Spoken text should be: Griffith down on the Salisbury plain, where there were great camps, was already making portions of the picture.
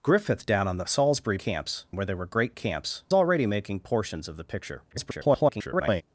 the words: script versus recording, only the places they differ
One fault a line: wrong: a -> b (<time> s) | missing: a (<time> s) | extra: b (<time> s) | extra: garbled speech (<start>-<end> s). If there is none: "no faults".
wrong: plain -> camps (1.4 s)
missing: was (3.0 s)
extra: garbled speech (4.9-6.0 s)